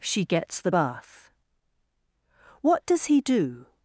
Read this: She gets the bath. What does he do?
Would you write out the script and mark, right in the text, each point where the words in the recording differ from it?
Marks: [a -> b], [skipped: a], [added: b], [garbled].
She gets the bath. What does he do?